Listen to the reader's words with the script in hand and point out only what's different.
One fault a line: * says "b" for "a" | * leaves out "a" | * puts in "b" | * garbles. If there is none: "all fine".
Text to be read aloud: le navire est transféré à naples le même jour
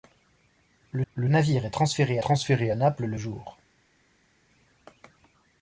* puts in "le"
* puts in "transféré"
* leaves out "même"